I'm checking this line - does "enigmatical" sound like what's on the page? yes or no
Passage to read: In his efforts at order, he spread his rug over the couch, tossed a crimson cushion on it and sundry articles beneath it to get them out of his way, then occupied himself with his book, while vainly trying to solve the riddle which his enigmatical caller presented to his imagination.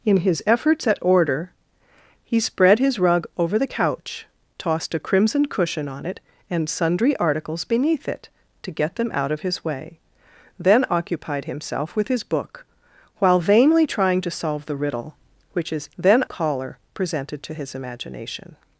no